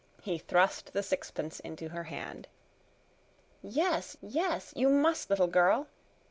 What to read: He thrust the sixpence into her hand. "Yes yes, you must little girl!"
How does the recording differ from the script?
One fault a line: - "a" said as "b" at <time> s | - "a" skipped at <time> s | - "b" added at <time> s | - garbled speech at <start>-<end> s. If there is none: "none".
none